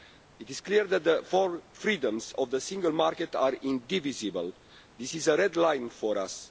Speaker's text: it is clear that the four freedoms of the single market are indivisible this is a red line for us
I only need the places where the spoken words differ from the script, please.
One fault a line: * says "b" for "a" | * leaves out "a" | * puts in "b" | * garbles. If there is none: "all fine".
all fine